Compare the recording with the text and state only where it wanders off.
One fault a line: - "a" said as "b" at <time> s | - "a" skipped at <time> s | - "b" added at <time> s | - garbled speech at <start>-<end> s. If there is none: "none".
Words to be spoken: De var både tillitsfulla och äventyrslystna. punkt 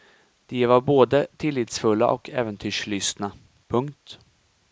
none